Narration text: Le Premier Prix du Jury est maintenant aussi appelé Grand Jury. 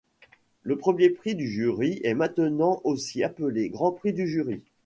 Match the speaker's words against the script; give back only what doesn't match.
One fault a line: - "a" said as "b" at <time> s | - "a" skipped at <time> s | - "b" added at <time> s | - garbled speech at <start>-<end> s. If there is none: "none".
- "Prix du" added at 3.9 s